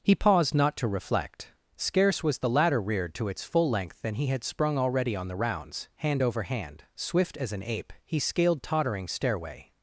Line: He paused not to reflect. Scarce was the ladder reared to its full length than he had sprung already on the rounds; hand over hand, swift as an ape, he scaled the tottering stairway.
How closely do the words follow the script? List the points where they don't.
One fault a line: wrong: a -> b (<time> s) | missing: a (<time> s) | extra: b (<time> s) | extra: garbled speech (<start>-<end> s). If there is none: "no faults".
missing: the (8.6 s)